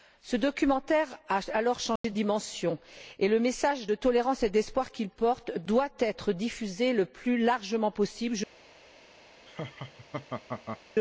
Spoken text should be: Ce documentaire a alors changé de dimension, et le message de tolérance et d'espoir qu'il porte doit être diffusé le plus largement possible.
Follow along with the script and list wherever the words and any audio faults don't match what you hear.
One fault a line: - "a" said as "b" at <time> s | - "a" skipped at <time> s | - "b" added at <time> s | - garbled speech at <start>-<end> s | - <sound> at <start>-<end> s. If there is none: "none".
- dropout at 2.0-2.0 s
- laugh at 9.5-10.8 s